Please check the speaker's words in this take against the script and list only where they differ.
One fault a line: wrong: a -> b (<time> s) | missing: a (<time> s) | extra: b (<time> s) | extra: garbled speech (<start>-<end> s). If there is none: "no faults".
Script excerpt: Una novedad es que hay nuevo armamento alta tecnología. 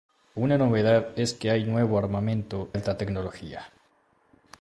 no faults